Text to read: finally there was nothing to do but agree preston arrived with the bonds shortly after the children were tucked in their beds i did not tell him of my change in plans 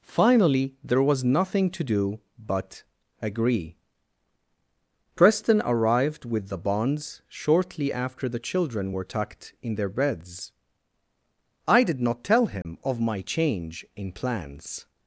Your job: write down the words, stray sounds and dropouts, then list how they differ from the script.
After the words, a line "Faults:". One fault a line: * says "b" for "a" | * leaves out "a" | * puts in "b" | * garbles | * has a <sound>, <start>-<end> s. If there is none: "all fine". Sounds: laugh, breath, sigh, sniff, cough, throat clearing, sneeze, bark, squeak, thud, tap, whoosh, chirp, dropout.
finally there was nothing to do but agree preston arrived with the bonds shortly after the children were tucked in their beds i did not tell him of my change in plans
Faults:
* has a dropout, 12.6-12.7 s